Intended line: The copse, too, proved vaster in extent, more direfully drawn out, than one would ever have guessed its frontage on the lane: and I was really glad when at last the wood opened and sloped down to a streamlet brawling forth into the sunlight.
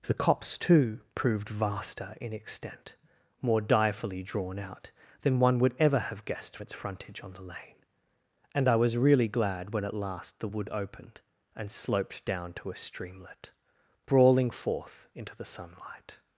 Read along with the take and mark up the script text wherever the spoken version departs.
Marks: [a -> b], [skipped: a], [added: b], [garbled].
The copse, too, proved vaster in extent, more direfully drawn out, than one would ever have guessed its frontage on the lane: and I was really glad when at last the wood opened and sloped down to a streamlet brawling forth into the sunlight.